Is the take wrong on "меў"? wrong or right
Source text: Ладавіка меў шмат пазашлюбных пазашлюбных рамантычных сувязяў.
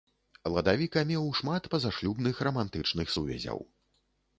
right